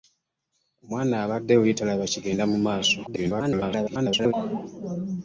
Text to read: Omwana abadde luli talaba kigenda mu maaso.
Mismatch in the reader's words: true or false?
true